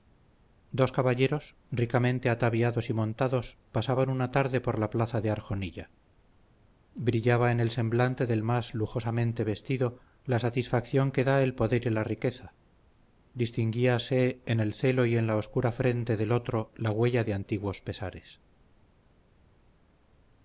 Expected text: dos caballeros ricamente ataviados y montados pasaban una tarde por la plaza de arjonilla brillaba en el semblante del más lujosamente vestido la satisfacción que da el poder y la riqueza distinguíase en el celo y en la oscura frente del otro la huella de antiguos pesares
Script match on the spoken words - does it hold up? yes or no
yes